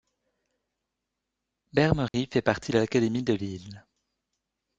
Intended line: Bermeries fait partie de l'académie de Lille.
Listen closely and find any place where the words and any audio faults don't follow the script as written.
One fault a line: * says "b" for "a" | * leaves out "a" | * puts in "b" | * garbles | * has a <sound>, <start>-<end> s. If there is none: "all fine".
* has a dropout, 2.1-2.1 s